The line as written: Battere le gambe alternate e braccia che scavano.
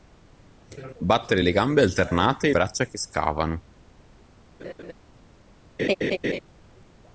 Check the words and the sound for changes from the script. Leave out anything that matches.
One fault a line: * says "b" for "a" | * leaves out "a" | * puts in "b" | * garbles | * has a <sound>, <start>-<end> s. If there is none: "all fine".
* has a laugh, 4.6-4.9 s
* has a laugh, 5.8-6.4 s